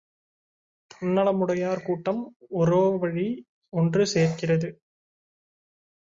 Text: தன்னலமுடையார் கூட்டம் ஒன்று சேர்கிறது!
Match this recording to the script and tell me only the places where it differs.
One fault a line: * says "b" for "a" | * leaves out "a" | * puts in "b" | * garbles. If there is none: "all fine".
* puts in "ஒரோவழி"